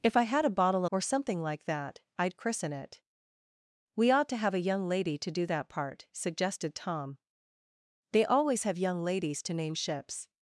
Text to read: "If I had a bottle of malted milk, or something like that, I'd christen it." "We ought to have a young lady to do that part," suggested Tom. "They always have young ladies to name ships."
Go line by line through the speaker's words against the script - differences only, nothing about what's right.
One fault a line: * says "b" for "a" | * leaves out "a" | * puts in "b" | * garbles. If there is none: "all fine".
* leaves out "of malted milk"